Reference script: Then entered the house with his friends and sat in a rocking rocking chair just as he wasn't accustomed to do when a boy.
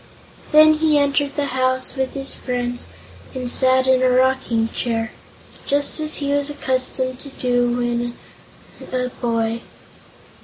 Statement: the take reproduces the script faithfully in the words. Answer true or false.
false